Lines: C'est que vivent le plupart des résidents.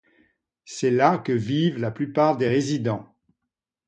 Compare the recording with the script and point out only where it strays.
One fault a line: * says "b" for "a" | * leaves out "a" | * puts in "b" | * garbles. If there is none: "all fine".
* puts in "là"
* says "la" for "le"